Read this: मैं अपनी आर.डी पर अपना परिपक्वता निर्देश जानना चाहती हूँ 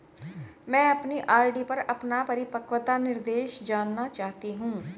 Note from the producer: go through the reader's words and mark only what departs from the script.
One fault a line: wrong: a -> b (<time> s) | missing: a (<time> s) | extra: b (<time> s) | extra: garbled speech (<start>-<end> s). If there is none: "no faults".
no faults